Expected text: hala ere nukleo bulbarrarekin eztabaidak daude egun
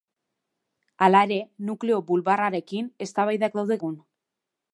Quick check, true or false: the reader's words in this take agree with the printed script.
true